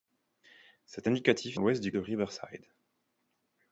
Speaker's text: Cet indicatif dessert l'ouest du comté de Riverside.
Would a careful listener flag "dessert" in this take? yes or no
yes